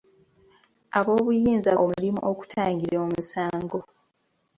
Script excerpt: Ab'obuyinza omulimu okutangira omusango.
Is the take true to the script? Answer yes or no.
yes